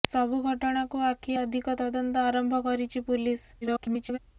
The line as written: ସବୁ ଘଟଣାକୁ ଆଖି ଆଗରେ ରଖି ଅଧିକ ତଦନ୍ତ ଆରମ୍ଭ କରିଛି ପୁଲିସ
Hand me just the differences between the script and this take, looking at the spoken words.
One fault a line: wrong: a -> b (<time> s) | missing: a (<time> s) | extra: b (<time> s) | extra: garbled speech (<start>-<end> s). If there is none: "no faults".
missing: ଆଗରେ ରଖି (1.4 s)
extra: garbled speech (3.6-4.2 s)